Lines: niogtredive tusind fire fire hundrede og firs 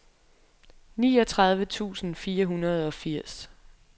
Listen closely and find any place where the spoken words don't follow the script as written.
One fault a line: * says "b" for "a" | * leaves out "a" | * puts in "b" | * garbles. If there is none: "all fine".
* leaves out "fire"